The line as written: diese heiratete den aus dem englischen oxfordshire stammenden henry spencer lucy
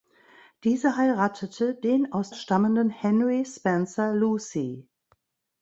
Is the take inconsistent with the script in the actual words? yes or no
yes